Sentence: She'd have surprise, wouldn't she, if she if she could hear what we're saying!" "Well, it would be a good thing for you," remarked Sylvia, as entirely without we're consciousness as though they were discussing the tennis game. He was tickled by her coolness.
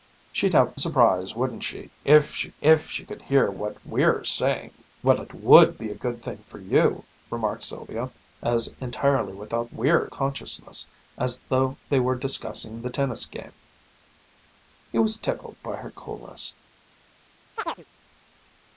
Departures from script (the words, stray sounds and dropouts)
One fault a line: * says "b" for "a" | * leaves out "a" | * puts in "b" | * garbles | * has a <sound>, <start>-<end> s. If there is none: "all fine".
* has a chirp, 17.6-17.8 s